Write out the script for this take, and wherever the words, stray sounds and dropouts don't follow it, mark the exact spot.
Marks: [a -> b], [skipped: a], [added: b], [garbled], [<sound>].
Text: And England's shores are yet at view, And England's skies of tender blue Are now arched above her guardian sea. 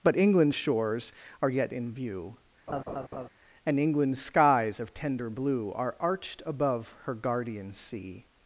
[And -> But] England's shores are yet [at -> in] view, [laugh] And England's skies of tender blue Are [skipped: now] arched above her guardian sea.